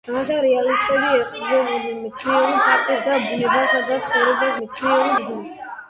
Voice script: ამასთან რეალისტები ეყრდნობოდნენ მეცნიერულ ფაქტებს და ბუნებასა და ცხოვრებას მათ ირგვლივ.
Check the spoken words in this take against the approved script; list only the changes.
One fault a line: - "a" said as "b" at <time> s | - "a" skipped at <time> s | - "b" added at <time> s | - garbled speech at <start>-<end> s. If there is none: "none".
- "მათ" said as "მეცნიერულ" at 4.6 s